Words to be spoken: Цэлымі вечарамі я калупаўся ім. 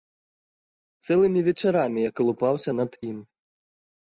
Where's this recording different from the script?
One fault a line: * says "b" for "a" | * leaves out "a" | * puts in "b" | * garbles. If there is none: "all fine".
* puts in "над"